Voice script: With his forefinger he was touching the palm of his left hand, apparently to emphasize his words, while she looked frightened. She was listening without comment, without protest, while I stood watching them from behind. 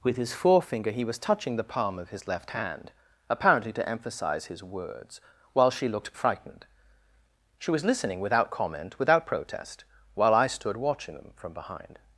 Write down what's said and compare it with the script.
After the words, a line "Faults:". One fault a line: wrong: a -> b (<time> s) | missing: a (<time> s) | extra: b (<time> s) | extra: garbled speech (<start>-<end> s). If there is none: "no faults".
With his forefinger he was touching the palm of his left hand, apparently to emphasize his words, while she looked frightened. She was listening without comment, without protest, while I stood watching them from behind.
Faults:
no faults